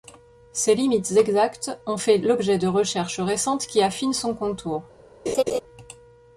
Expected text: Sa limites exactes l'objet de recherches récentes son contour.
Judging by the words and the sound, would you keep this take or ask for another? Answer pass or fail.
fail